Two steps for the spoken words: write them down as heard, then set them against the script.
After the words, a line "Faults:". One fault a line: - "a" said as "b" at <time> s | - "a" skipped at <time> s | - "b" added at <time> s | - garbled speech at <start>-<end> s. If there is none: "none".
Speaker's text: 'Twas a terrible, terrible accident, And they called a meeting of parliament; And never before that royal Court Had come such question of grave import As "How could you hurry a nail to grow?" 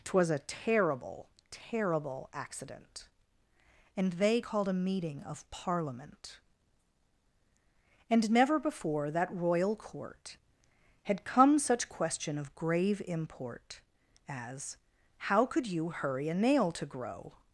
'Twas a terrible, terrible accident, And they called a meeting of parliament; And never before that royal Court Had come such question of grave import As "How could you hurry a nail to grow?"
Faults:
none